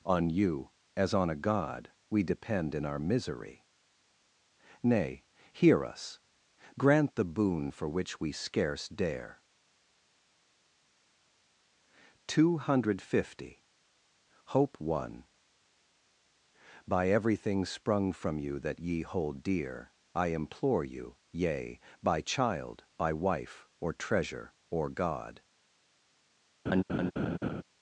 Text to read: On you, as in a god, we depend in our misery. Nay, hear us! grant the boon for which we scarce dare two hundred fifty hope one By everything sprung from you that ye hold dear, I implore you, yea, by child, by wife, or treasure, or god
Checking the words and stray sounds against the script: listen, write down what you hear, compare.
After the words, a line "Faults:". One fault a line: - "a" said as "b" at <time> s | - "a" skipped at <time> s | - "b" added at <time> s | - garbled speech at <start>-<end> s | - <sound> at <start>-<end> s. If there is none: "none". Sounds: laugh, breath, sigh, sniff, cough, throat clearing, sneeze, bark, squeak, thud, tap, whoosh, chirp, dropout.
On you, as on a god, we depend in our misery. Nay, hear us! grant the boon for which we scarce dare two hundred fifty hope one By everything sprung from you that ye hold dear, I implore you, yea, by child, by wife, or treasure, or god
Faults:
- "in" said as "on" at 1.1 s
- laugh at 26.7-27.6 s